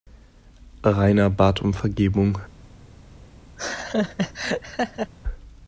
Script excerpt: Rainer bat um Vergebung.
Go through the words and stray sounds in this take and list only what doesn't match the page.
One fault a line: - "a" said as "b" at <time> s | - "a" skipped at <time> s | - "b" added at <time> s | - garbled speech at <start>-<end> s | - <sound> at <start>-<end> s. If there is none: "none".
- laugh at 3.6-5.1 s